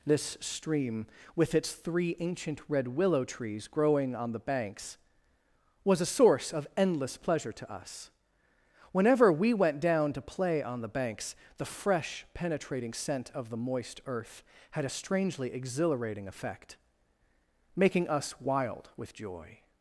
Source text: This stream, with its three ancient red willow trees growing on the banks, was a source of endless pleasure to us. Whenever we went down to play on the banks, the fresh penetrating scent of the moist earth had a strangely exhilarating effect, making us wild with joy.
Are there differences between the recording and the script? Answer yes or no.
no